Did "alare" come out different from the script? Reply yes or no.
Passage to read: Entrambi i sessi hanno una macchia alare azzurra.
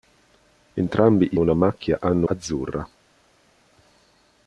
yes